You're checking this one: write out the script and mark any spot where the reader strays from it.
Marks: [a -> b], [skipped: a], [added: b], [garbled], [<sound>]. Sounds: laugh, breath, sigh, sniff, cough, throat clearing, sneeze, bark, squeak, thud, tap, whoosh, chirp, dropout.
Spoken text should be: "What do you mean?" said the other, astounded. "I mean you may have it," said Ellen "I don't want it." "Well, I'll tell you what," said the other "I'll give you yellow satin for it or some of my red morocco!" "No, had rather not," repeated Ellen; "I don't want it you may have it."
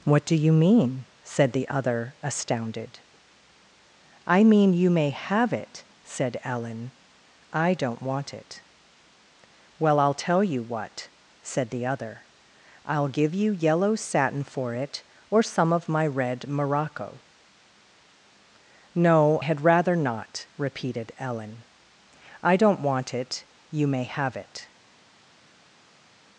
"What do you mean?" said the other, astounded. "I mean you may have it," said Ellen "I don't want it." "Well, I'll tell you what," said the other "I'll give you yellow satin for it or some of my red morocco!" "No, had rather not," repeated Ellen; "I don't want it you may have it."